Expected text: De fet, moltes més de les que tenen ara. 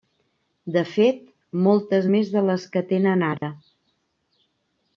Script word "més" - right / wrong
right